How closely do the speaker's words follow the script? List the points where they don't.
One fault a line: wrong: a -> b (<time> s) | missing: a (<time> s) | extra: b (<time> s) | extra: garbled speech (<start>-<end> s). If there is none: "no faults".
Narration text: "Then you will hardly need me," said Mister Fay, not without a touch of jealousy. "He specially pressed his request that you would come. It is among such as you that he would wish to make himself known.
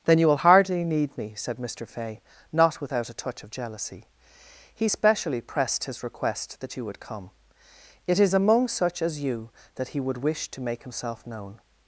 no faults